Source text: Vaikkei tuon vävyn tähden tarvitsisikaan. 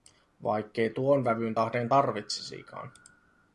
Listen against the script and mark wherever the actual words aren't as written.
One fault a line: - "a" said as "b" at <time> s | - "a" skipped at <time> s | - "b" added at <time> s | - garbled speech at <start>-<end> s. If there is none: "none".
none